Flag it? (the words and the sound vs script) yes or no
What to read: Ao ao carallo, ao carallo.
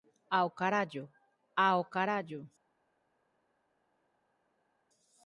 yes